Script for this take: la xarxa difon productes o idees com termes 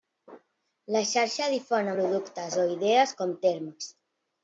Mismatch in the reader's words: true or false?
false